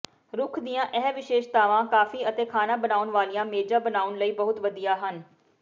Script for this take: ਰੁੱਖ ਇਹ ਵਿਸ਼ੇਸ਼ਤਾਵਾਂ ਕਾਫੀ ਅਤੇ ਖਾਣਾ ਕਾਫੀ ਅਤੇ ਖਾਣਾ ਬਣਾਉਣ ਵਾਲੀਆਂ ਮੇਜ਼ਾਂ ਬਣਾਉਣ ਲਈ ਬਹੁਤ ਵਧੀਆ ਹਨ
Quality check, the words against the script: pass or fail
fail